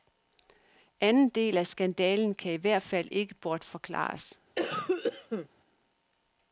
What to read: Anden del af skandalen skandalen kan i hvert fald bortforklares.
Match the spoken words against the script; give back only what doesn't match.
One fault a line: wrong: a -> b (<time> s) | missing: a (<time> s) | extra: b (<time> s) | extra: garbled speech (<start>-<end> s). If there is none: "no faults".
missing: skandalen (2.4 s)
extra: ikke (3.1 s)